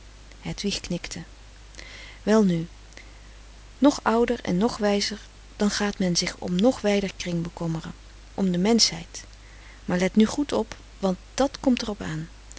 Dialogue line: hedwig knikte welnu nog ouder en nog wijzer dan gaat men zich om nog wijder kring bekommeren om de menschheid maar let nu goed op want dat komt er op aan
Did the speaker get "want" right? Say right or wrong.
right